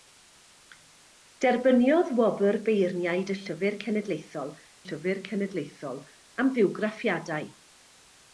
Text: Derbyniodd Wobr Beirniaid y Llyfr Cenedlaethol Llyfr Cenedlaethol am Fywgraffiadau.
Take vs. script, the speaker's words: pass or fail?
pass